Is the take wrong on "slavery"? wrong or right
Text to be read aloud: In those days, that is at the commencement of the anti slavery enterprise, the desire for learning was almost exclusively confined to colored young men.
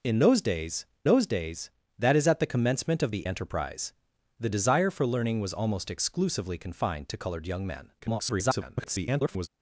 wrong